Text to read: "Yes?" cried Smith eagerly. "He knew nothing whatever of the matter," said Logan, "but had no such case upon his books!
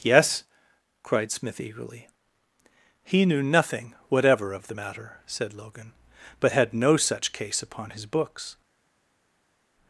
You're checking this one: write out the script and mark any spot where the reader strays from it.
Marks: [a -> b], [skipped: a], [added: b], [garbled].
"Yes?" cried Smith eagerly. "He knew nothing whatever of the matter," said Logan, "but had no such case upon his books!